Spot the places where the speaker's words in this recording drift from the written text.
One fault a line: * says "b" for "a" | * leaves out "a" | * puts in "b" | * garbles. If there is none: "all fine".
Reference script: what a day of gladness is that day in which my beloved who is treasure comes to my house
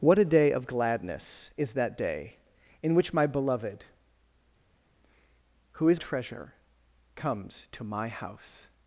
all fine